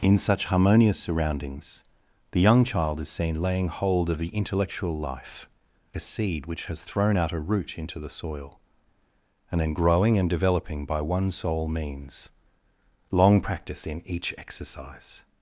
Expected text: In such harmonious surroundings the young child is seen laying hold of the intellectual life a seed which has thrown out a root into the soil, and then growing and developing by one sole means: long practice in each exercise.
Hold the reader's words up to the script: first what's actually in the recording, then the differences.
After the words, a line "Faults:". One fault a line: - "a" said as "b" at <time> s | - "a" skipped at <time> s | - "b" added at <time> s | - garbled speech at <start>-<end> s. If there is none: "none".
In such harmonious surroundings the young child is seen laying hold of the intellectual life a seed which has thrown out a root into the soil, and then growing and developing by one sole means: long practice in each exercise.
Faults:
none